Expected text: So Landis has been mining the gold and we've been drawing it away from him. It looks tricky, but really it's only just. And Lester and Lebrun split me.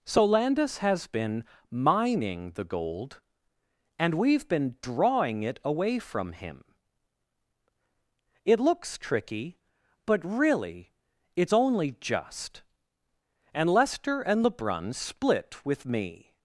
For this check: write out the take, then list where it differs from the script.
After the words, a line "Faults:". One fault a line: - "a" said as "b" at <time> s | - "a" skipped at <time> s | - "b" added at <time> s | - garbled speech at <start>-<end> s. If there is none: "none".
So Landis has been mining the gold and we've been drawing it away from him. It looks tricky, but really it's only just. And Lester and Lebrun split with me.
Faults:
- "with" added at 15.6 s